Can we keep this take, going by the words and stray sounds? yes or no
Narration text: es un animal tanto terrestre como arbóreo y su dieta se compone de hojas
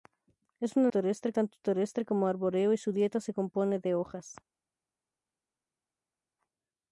no